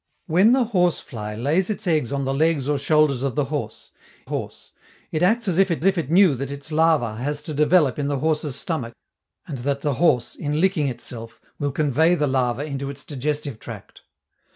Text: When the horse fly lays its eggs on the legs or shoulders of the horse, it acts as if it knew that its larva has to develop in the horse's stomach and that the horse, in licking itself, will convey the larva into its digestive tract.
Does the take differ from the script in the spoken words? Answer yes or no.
yes